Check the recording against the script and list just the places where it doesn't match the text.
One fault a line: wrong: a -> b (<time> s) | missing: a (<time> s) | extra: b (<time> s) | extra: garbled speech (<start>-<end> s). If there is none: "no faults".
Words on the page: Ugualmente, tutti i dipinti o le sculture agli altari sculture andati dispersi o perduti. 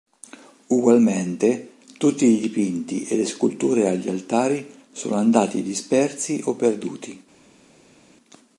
wrong: o -> e (3.0 s)
wrong: sculture -> sono (4.9 s)